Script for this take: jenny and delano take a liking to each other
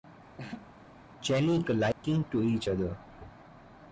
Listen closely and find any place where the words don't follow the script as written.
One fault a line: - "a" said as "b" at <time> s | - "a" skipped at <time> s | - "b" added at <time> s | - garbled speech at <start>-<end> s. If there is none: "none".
- "and delano take" skipped at 1.6 s